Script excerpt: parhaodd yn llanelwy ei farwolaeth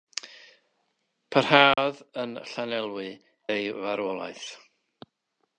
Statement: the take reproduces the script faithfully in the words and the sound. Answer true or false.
false